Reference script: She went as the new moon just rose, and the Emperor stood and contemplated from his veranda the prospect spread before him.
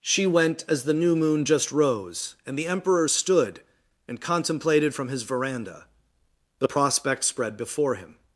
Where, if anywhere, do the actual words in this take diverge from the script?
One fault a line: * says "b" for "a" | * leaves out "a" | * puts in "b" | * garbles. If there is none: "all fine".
all fine